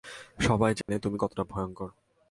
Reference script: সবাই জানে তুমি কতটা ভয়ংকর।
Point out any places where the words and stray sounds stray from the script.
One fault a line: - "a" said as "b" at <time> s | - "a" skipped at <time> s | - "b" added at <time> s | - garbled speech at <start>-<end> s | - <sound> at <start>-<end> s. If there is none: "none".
- dropout at 0.8-0.9 s